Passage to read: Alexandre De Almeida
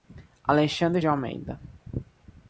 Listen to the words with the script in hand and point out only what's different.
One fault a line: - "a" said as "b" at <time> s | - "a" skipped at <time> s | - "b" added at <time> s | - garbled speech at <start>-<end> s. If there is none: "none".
none